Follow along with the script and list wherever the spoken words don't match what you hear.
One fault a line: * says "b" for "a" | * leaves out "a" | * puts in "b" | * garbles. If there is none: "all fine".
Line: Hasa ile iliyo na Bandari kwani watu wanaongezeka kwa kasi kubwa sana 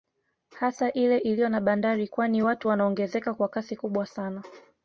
all fine